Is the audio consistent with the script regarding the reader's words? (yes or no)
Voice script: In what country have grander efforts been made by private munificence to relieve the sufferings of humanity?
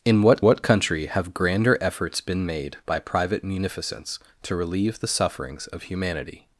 no